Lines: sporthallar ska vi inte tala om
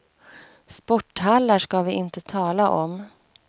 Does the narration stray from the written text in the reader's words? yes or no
no